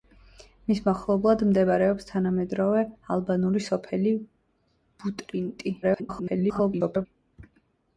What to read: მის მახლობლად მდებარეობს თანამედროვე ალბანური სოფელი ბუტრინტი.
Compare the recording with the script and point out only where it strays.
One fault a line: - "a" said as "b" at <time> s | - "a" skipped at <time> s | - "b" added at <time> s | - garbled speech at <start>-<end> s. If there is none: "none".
- garbled speech at 5.8-7.1 s